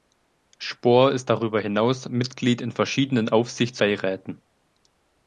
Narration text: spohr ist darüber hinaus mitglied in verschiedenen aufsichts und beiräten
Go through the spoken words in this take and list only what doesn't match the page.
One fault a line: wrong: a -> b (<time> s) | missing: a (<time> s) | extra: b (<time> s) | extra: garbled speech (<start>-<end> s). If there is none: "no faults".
missing: und (3.8 s)